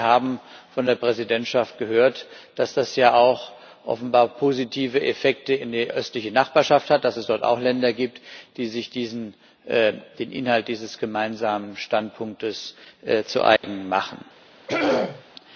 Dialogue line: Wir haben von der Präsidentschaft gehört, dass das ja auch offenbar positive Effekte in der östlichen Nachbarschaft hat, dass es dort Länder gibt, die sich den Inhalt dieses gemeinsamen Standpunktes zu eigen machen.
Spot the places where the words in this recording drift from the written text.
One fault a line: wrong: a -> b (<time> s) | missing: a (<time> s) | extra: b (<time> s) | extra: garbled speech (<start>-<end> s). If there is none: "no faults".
extra: auch (7.4 s)